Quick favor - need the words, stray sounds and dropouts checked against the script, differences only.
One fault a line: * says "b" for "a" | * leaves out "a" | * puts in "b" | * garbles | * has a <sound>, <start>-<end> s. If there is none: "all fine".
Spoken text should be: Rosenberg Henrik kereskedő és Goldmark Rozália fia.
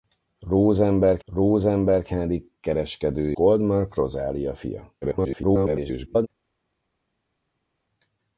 * puts in "rosenberg"
* leaves out "és"
* garbles